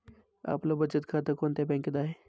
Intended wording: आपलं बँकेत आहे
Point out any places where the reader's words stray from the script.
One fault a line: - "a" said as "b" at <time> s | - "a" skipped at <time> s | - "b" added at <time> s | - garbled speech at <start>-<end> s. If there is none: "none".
- "बचत खातं कोणत्या" added at 0.8 s